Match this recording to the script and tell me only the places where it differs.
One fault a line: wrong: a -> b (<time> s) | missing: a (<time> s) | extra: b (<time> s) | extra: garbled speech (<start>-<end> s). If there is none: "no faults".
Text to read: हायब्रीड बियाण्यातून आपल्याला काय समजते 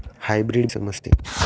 missing: बियाण्यातून आपल्याला काय (0.7 s)